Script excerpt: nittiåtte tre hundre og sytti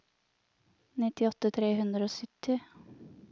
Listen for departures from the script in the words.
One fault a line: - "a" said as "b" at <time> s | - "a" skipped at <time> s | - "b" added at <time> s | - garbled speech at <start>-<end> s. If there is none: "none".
none